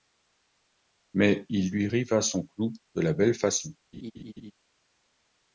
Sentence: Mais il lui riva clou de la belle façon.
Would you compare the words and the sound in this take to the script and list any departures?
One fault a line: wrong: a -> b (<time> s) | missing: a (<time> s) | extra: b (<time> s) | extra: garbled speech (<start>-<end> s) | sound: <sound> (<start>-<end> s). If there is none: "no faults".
extra: son (2.2 s)
sound: laugh (3.9-4.5 s)